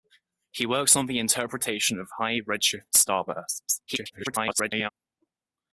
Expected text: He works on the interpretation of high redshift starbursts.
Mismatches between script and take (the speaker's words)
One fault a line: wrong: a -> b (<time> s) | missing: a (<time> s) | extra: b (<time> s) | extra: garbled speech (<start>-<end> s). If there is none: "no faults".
extra: garbled speech (3.9-4.9 s)